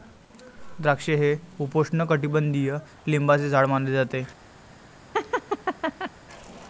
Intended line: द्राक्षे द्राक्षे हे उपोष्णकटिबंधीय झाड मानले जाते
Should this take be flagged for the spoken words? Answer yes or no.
yes